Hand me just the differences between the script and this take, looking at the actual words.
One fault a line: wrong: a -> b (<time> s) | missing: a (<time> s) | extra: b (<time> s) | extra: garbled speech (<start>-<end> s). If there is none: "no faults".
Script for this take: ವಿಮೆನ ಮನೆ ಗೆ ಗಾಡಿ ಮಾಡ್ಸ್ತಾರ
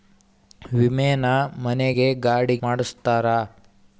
no faults